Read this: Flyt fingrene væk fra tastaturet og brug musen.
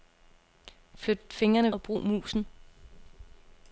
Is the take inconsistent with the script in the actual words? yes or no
yes